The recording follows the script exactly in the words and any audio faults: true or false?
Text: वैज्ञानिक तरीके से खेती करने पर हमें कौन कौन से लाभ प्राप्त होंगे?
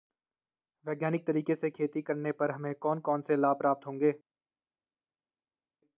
true